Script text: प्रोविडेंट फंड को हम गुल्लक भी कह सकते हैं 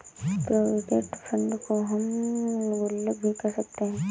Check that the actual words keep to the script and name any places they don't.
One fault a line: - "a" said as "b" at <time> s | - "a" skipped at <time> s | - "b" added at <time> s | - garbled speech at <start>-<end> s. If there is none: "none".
none